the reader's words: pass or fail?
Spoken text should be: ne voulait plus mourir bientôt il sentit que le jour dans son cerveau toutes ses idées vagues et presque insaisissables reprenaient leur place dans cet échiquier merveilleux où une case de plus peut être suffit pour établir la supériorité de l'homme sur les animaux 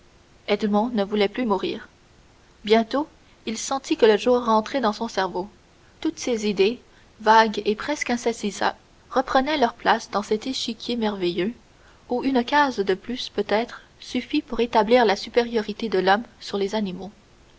fail